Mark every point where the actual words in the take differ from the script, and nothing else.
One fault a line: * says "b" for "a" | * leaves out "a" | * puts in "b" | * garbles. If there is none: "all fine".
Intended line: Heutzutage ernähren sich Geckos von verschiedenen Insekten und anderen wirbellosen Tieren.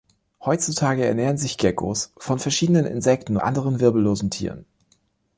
* leaves out "und"